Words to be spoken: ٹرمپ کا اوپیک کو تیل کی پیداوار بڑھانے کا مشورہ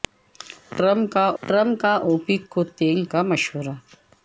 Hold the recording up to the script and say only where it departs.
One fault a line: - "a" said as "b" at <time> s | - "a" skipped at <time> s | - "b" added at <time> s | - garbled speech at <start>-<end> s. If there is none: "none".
- "ٹرمپ کا" added at 1.4 s
- "کی پیداوار بڑھانے" skipped at 3.0 s